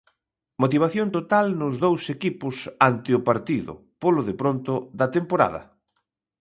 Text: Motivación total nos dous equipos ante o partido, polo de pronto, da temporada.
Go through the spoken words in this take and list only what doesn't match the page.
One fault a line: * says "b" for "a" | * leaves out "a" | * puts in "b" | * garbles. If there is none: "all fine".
all fine